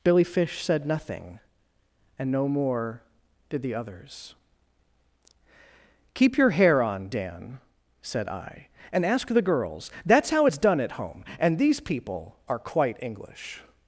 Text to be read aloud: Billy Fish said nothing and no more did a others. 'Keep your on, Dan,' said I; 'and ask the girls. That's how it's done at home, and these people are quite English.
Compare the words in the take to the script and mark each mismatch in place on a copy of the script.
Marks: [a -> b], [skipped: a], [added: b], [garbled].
Billy Fish said nothing and no more did [a -> the] others. 'Keep your [added: hair] on, Dan,' said I; 'and ask the girls. That's how it's done at home, and these people are quite English.